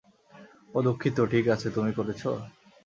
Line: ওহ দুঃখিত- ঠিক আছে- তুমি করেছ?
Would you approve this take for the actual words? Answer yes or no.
yes